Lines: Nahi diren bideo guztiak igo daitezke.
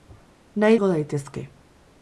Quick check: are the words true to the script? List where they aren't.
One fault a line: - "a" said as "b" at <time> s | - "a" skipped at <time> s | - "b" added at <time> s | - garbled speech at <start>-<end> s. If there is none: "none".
- "diren bideo guztiak" skipped at 0.8 s